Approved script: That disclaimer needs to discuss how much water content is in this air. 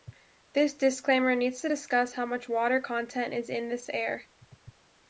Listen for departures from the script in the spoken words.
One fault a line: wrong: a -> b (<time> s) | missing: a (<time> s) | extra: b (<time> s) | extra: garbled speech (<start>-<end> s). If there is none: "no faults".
wrong: That -> This (0.5 s)